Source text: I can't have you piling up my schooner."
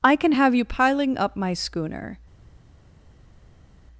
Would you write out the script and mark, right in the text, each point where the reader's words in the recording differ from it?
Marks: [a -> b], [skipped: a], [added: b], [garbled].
I [can't -> can] have you piling up my schooner."